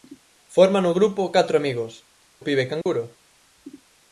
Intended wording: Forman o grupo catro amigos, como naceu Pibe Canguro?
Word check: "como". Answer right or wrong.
wrong